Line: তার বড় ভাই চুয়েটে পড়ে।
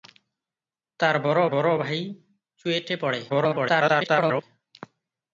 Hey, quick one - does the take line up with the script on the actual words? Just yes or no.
no